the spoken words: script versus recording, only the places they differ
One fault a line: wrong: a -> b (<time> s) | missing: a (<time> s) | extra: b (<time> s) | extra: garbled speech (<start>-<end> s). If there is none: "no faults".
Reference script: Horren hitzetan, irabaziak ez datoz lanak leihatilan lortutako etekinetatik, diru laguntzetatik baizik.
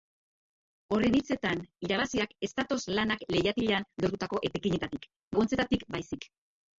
missing: diru (5.1 s)